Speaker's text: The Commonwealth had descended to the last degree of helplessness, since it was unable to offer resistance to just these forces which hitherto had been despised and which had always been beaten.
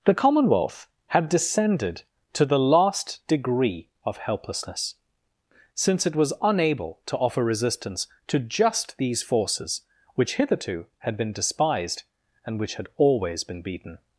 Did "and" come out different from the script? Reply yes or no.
no